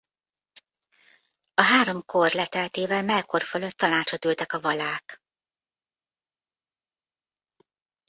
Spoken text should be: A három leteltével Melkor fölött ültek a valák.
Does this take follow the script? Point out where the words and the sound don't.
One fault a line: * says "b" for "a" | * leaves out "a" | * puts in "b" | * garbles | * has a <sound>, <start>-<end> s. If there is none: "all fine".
* puts in "kor"
* puts in "tanácsot"